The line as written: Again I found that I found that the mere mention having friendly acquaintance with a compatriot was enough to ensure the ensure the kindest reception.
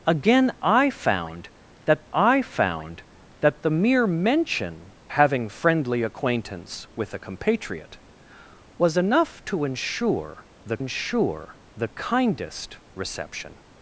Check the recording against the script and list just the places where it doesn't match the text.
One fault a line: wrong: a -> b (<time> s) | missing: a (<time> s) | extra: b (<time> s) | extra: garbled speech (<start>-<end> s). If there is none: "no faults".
no faults